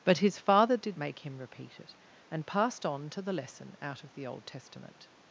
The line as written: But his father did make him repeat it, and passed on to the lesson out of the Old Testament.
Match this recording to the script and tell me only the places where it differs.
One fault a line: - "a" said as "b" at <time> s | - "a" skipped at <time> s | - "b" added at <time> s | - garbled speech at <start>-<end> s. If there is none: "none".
none